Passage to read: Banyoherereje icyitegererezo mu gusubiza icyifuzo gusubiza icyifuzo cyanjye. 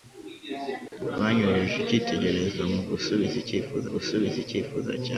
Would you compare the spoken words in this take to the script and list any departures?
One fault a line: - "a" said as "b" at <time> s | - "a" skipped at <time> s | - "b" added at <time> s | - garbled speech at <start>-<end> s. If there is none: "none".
none